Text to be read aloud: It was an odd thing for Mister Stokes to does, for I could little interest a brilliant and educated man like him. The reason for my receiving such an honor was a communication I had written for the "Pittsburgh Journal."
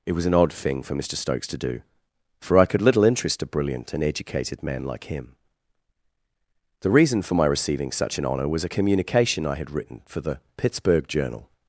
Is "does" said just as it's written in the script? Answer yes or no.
no